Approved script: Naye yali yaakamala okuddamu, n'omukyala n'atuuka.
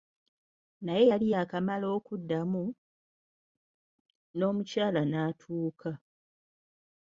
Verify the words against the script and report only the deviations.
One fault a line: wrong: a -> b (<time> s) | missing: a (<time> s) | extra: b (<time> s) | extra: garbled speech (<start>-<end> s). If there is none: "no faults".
no faults